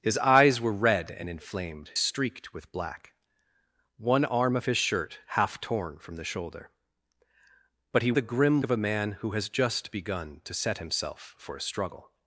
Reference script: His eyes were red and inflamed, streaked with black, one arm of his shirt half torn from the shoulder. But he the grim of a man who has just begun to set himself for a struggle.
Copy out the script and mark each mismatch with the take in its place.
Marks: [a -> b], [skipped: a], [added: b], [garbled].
His eyes were red and inflamed, streaked with black, one arm of his shirt half torn from the shoulder. But he the grim of a man who has just begun to set himself for a struggle.